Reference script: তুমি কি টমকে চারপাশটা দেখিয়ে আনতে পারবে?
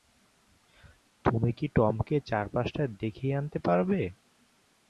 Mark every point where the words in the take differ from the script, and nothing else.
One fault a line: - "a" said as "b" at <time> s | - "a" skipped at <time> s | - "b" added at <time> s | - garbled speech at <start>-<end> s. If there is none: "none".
none